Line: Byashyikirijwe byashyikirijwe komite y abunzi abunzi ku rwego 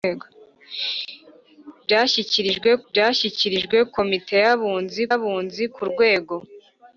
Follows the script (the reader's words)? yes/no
yes